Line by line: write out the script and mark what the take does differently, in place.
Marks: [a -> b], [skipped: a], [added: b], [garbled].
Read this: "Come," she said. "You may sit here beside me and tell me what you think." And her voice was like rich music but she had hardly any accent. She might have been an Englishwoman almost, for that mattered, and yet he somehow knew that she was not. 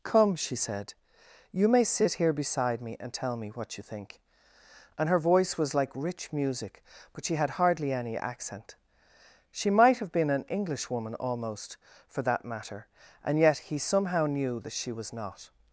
"Come," she said. "You may sit here beside me and tell me what you think." And her voice was like rich music but she had hardly any accent. She might have been an Englishwoman almost, for that [mattered, -> matter] and yet he somehow knew that she was not.